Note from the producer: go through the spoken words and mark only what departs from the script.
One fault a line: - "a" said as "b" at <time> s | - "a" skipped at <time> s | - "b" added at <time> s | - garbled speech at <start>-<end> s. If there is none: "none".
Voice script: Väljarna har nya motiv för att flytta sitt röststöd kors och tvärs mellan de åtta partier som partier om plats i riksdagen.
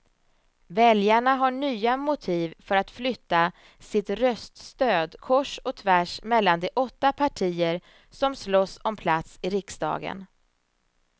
- "partier" said as "slåss" at 8.3 s